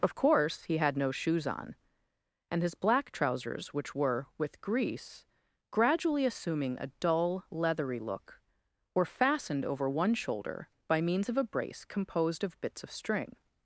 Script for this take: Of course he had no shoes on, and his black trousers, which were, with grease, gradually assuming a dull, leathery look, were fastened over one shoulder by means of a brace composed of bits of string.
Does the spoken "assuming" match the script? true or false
true